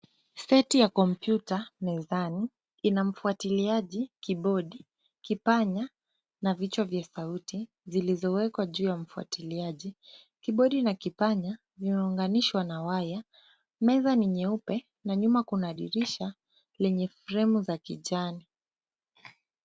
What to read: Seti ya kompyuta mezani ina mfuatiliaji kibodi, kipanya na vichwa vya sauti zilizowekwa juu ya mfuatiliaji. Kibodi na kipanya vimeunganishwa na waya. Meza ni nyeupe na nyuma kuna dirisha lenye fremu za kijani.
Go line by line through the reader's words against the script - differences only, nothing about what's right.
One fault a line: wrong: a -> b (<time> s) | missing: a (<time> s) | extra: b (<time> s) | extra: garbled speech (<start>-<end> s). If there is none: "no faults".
no faults